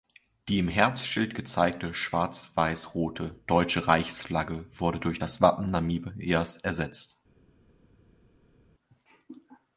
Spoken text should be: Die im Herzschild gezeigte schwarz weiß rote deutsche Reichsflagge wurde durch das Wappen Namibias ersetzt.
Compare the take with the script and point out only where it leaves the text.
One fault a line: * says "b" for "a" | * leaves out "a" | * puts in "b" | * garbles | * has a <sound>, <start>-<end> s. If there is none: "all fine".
all fine